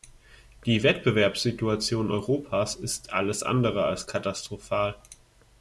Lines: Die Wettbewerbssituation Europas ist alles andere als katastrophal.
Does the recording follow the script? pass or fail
pass